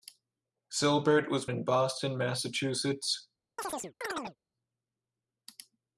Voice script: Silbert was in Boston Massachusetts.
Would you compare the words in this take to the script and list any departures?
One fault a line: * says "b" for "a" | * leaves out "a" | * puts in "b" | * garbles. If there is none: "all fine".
all fine